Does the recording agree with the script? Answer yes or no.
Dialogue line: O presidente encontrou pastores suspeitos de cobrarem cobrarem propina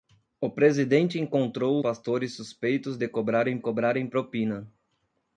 yes